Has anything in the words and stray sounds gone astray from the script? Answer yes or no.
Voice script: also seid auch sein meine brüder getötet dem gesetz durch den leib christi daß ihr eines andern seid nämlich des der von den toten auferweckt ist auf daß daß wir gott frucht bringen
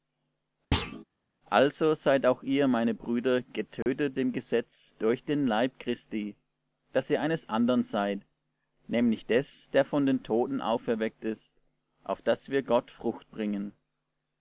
yes